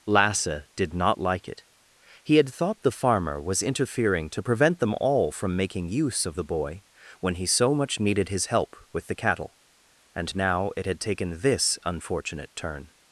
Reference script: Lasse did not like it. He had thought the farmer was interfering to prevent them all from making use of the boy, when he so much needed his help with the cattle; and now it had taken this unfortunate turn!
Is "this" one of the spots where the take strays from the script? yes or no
no